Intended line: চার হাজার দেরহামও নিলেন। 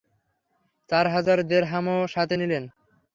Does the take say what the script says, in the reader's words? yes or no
no